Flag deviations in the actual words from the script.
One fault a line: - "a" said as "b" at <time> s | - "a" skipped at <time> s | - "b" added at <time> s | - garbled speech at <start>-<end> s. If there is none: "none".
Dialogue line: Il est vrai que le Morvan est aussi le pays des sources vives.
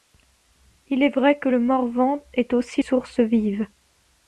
- "le pays des" skipped at 2.8 s